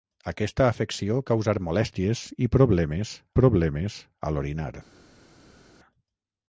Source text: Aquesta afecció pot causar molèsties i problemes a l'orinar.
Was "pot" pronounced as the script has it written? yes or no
no